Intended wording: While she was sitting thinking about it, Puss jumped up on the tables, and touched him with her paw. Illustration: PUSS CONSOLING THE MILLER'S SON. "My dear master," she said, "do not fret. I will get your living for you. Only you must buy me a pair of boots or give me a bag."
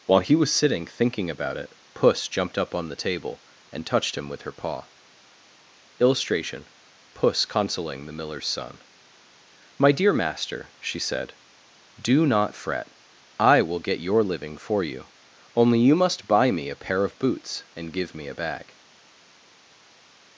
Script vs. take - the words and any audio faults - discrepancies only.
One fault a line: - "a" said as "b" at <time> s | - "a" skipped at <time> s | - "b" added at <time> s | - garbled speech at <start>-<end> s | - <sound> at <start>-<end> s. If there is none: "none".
- "she" said as "he" at 0.2 s
- "tables" said as "table" at 3.0 s
- "or" said as "and" at 17.8 s